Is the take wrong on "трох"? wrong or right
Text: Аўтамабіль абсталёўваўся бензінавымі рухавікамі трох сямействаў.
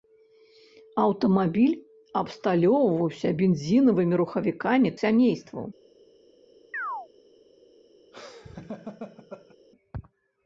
wrong